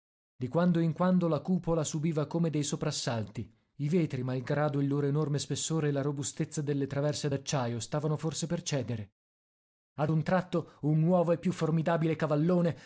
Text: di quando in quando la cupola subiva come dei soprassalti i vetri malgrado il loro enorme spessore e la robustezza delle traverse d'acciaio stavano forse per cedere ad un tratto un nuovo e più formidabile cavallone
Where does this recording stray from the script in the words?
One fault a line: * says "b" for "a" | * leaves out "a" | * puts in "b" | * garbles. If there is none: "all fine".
all fine